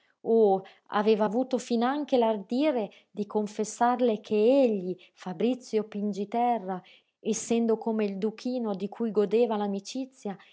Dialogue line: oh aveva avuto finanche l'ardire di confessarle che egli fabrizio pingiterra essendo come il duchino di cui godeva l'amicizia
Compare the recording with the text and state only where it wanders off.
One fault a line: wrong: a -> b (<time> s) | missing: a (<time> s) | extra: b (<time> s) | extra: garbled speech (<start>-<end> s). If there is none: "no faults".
no faults